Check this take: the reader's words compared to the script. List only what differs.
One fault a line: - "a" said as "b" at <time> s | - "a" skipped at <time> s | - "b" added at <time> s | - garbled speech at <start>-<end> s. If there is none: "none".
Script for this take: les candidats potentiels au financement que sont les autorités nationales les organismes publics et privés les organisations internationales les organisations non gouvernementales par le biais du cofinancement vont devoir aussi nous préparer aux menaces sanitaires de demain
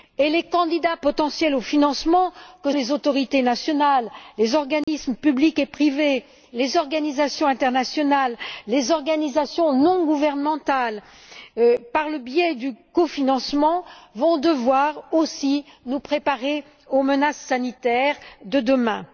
- "sont" skipped at 2.7 s